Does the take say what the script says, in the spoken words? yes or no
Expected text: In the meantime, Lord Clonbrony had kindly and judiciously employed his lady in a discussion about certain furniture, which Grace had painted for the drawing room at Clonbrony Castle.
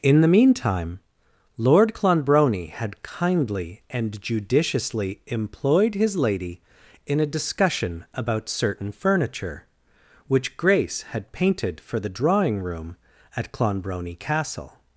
yes